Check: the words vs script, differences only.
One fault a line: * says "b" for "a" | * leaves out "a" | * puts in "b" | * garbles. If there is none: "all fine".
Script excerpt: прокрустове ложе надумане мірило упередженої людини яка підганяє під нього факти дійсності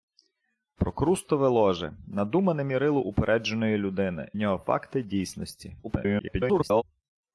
* leaves out "яка підганяє під"
* garbles